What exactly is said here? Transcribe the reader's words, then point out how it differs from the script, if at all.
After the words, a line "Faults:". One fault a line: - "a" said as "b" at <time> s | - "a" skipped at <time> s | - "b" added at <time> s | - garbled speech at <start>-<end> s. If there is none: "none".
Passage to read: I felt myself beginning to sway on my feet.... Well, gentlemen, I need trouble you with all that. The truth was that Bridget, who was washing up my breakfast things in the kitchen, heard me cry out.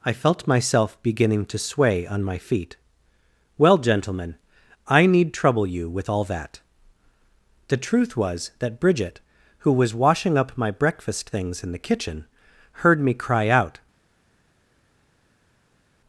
I felt myself beginning to sway on my feet.... Well, gentlemen, I need trouble you with all that. The truth was that Bridget, who was washing up my breakfast things in the kitchen, heard me cry out.
Faults:
none